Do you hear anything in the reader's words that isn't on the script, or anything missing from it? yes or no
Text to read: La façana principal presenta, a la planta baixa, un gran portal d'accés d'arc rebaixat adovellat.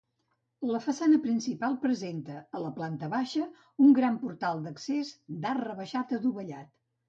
no